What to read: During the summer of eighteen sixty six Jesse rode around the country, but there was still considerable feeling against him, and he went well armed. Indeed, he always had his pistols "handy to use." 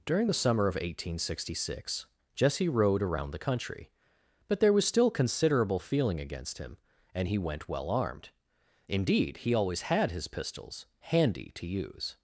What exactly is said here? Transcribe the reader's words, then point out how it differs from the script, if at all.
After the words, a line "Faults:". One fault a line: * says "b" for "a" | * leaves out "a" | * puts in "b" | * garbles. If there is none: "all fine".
During the summer of eighteen sixty six Jesse rode around the country, but there was still considerable feeling against him, and he went well armed. Indeed, he always had his pistols "handy to use."
Faults:
all fine